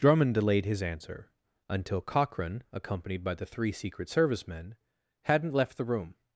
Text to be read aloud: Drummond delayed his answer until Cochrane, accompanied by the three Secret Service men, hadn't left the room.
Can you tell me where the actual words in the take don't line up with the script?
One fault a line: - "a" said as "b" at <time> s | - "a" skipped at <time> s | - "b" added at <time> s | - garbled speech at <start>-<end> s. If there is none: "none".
none